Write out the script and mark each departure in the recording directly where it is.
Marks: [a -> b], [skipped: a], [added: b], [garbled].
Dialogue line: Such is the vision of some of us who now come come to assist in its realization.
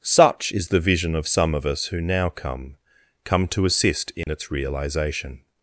Such is the vision of some of us who now come come to assist in its realization.